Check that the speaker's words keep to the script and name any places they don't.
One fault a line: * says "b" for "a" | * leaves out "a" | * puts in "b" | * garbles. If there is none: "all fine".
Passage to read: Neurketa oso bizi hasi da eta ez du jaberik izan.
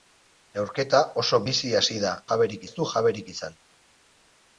* says "jaberik" for "eta"